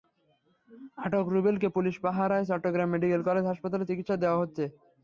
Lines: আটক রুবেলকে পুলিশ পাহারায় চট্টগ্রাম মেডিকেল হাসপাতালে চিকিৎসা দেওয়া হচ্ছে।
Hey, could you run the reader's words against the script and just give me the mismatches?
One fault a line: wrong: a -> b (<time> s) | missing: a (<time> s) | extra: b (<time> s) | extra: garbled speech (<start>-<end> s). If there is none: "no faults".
extra: কলেজ (3.3 s)